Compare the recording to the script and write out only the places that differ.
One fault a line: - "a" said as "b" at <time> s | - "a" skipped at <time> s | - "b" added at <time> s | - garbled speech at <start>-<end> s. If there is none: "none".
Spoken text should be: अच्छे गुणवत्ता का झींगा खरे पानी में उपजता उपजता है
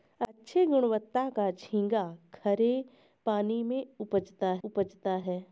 none